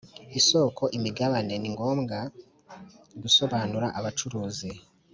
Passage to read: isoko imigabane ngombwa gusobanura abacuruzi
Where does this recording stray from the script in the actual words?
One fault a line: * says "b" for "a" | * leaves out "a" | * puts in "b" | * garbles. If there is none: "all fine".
* puts in "ni"